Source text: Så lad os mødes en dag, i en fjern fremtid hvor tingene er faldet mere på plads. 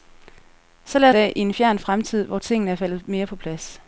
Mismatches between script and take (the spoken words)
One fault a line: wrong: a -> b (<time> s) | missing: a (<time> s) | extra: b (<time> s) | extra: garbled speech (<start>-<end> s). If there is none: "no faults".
missing: os mødes en (1.1 s)